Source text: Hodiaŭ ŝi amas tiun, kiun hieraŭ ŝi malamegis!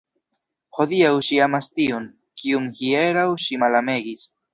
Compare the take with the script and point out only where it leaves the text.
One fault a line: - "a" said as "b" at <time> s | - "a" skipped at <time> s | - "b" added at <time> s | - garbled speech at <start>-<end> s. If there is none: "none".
none